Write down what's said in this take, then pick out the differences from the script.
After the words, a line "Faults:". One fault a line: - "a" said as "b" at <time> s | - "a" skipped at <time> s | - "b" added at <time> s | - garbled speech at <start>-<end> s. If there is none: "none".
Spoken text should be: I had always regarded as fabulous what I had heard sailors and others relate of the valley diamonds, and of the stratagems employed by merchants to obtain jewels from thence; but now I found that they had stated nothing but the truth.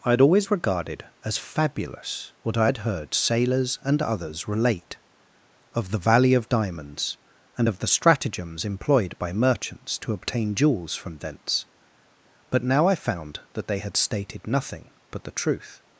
I had always regarded as fabulous what I had heard sailors and others relate of the valley of diamonds, and of the stratagems employed by merchants to obtain jewels from thence; but now I found that they had stated nothing but the truth.
Faults:
- "of" added at 6.3 s